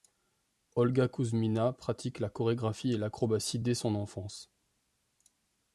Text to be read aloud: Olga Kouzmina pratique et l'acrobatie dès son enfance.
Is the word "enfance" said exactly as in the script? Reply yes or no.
yes